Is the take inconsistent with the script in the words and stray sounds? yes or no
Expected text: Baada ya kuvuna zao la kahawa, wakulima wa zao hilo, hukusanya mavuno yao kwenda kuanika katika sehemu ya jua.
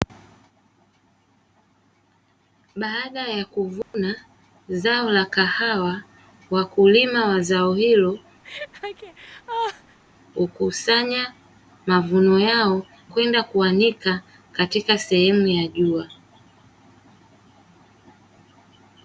yes